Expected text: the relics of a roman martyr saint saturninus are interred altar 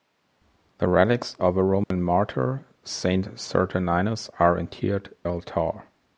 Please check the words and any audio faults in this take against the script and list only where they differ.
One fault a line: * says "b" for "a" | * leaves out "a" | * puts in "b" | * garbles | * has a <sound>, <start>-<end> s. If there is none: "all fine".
* has a dropout, 1.8-1.9 s